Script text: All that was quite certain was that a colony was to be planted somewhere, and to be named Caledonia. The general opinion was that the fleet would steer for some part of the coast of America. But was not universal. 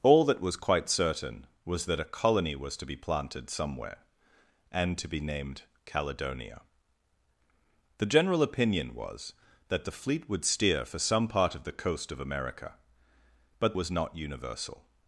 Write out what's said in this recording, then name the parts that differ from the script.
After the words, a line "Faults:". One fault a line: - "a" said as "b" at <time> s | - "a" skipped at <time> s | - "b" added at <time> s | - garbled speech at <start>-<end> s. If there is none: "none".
All that was quite certain was that a colony was to be planted somewhere, and to be named Caledonia. The general opinion was that the fleet would steer for some part of the coast of America. But was not universal.
Faults:
none